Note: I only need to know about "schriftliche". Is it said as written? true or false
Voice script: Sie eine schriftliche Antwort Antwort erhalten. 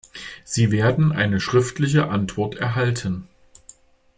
true